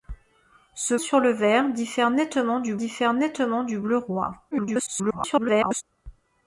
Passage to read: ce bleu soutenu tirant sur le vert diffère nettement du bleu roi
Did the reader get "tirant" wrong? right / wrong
wrong